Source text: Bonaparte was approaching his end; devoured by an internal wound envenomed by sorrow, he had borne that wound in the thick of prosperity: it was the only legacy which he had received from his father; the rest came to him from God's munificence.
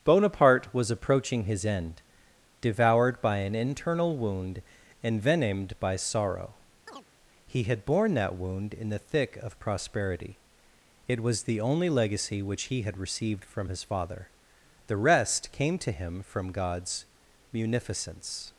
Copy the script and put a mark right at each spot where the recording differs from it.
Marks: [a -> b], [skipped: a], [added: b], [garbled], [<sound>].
Bonaparte was approaching his end; devoured by an internal wound envenomed by sorrow, [chirp] he had borne that wound in the thick of prosperity: it was the only legacy which he had received from his father; the rest came to him from God's munificence.